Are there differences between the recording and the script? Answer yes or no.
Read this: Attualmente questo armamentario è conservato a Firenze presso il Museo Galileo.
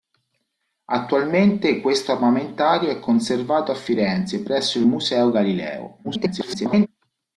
yes